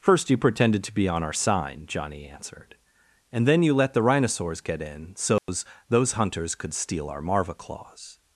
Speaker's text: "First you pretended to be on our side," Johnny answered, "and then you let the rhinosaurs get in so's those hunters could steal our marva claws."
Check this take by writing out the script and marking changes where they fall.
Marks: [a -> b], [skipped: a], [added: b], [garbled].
"First you pretended to be on our [side," -> sign] Johnny answered, "and then you let the rhinosaurs get in so's those hunters could steal our marva claws."